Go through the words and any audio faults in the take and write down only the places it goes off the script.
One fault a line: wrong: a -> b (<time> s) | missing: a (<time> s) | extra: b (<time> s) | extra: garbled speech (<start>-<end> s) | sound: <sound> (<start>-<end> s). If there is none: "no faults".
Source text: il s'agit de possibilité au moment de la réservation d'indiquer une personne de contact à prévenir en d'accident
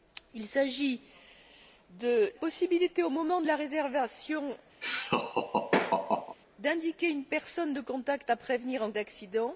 sound: laugh (4.8-6.4 s)